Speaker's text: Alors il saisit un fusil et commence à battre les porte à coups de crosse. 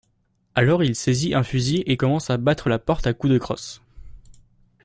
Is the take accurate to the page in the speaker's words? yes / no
no